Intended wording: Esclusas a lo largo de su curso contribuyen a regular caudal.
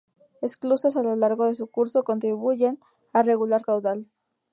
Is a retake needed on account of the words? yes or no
no